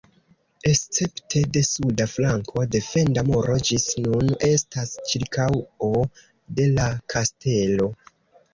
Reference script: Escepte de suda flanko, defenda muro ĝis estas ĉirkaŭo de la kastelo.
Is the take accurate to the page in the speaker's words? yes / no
no